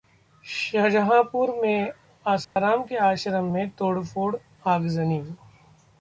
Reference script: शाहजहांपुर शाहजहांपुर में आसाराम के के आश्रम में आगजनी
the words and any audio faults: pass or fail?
fail